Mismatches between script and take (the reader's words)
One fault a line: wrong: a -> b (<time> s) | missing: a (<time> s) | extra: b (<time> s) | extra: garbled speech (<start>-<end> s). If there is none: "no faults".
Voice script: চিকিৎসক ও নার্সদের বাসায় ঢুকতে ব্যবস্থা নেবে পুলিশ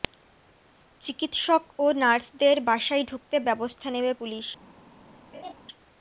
no faults